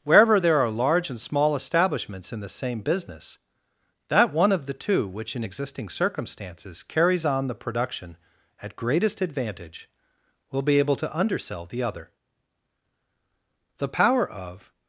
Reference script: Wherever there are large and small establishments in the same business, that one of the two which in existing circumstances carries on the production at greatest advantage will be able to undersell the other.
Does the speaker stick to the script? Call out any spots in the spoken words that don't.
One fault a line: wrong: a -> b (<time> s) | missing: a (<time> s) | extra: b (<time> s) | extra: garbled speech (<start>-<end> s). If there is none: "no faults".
extra: The power of (13.8 s)